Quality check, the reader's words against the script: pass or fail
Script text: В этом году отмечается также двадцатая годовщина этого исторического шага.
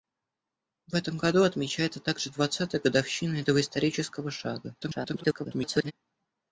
fail